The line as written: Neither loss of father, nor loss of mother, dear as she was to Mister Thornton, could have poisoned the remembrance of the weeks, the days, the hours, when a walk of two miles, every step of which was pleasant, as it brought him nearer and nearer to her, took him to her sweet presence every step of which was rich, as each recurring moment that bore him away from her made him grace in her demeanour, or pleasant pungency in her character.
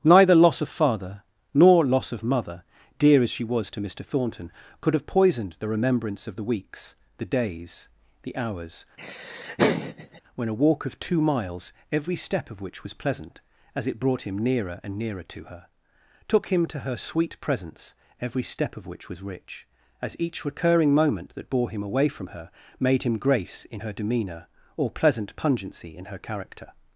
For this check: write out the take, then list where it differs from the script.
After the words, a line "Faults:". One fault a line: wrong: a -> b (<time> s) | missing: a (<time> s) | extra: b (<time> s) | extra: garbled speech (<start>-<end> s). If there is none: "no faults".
Neither loss of father, nor loss of mother, dear as she was to Mister Thornton, could have poisoned the remembrance of the weeks, the days, the hours, when a walk of two miles, every step of which was pleasant, as it brought him nearer and nearer to her, took him to her sweet presence every step of which was rich, as each recurring moment that bore him away from her made him grace in her demeanour, or pleasant pungency in her character.
Faults:
no faults